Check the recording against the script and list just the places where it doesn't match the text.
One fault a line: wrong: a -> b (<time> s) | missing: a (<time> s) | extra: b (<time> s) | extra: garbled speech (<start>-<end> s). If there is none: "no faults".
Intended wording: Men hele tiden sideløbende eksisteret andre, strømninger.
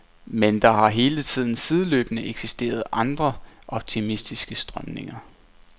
extra: der har (0.6 s)
extra: optimistiske (3.7 s)